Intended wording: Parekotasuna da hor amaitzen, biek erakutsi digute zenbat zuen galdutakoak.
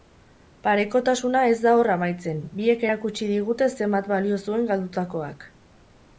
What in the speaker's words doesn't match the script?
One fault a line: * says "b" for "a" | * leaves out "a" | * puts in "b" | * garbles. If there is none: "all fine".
* puts in "ez"
* puts in "balio"